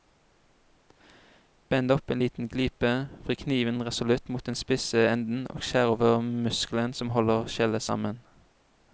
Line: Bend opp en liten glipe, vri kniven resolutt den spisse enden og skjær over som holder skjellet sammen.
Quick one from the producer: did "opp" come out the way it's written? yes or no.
yes